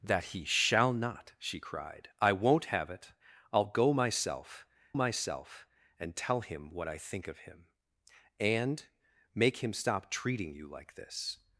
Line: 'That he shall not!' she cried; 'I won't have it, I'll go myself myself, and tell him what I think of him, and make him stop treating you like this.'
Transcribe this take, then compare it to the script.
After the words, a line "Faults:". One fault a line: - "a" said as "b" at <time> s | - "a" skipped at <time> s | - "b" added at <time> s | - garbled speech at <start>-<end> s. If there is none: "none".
'That he shall not!' she cried; 'I won't have it, I'll go myself myself, and tell him what I think of him, and make him stop treating you like this.'
Faults:
none